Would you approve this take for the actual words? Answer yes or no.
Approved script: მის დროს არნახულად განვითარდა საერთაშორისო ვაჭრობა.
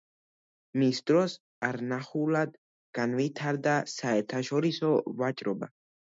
yes